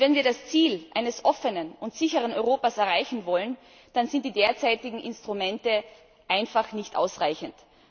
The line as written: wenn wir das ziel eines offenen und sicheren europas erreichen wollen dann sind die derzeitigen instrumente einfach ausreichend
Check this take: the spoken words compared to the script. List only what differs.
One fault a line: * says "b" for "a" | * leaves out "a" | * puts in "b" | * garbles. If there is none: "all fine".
* puts in "nicht"